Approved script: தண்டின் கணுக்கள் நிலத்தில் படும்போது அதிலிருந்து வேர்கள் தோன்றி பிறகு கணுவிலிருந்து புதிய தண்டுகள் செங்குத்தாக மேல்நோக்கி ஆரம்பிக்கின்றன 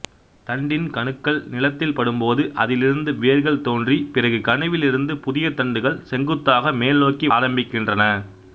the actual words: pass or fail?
pass